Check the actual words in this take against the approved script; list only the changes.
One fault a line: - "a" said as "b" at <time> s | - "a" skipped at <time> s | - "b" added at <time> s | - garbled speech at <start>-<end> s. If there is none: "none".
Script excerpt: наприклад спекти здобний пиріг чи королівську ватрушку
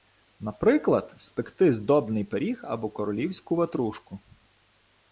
- "чи" said as "або" at 2.6 s